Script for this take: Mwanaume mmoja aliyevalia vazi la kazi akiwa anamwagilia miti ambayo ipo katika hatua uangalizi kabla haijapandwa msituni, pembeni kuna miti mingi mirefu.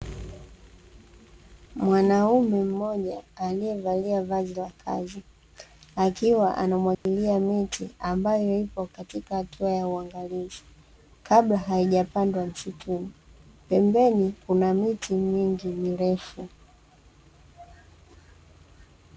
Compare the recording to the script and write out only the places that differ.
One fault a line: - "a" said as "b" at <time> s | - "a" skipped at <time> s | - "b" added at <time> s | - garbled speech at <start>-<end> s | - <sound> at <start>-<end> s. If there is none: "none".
- dropout at 6.9-7.1 s
- "ya" added at 9.7 s